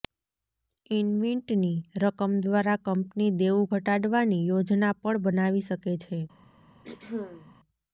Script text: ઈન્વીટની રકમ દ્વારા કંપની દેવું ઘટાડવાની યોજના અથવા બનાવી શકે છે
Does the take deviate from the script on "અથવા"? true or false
true